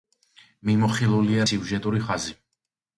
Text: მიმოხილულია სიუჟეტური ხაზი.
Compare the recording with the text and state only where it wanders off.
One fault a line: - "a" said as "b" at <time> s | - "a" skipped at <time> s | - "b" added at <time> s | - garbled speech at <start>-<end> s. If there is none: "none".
none